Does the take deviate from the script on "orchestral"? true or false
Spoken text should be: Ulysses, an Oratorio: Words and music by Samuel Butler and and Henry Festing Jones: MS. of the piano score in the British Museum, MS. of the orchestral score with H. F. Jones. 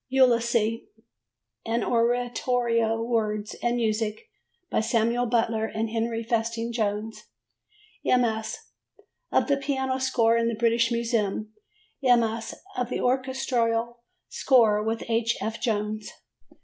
false